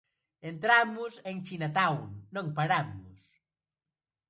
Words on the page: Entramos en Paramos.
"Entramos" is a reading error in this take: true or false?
false